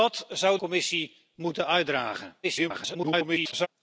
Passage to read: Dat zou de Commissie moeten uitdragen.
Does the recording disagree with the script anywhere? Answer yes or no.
yes